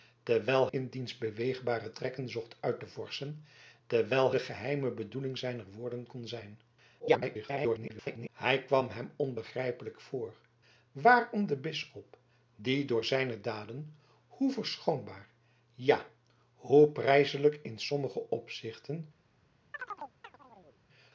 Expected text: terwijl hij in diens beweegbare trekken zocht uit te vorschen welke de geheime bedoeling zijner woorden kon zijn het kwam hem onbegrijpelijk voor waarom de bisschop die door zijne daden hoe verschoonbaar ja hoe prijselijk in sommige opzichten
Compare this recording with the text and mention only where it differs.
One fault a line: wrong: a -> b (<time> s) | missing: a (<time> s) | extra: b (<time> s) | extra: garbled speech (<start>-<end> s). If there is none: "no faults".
missing: hij (0.7 s)
wrong: welke -> terwijl (3.9 s)
extra: garbled speech (7.0-8.3 s)